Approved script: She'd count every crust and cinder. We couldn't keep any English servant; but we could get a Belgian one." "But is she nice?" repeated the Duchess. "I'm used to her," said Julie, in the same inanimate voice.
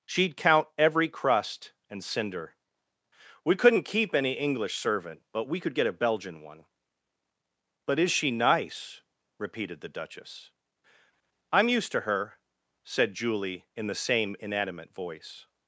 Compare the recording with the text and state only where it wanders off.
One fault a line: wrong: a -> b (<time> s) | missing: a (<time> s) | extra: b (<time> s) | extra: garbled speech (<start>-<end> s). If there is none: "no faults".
no faults